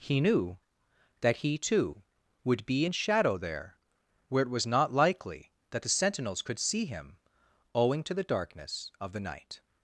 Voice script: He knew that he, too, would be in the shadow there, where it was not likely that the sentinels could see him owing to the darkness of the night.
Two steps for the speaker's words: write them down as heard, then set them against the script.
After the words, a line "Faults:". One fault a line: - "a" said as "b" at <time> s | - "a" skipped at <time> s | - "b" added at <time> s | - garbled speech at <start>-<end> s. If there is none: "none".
He knew that he, too, would be in shadow there, where it was not likely that the sentinels could see him owing to the darkness of the night.
Faults:
- "the" skipped at 2.9 s